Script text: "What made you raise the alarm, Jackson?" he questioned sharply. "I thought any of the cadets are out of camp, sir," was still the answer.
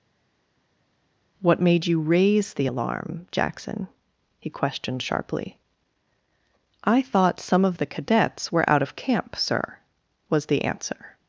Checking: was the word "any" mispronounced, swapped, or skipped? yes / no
yes